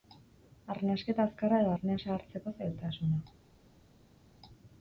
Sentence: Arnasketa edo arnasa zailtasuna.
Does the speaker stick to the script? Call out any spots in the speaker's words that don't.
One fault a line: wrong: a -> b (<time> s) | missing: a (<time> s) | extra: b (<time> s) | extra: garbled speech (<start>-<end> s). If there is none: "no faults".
extra: azkarra (1.3 s)
extra: hartzeko (2.2 s)